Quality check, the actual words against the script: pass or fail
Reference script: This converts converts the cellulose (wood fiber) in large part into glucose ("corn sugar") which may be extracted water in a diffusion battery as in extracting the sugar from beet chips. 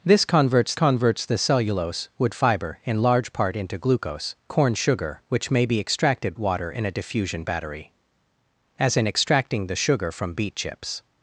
pass